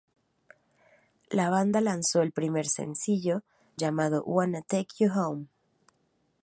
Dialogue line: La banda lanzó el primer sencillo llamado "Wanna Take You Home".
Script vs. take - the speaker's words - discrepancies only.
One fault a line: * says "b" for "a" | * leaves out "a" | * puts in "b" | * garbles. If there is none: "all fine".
all fine